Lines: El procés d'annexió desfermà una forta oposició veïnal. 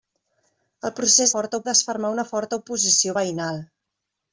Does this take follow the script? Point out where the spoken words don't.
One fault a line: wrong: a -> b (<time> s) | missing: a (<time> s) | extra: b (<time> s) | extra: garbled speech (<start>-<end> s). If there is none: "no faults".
wrong: d'annexió -> forta (1.3 s)